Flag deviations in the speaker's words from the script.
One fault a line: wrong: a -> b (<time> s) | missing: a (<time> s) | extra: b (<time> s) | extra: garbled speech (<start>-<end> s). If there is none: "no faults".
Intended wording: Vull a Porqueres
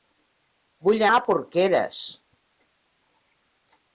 no faults